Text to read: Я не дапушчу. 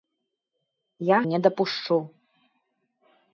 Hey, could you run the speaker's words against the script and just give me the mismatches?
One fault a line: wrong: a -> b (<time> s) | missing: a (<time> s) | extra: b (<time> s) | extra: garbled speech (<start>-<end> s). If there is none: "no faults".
no faults